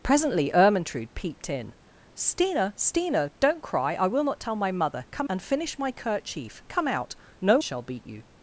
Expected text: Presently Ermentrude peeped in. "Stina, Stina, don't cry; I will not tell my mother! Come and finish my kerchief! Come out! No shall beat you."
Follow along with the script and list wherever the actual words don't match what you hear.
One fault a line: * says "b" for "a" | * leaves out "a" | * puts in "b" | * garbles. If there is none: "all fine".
all fine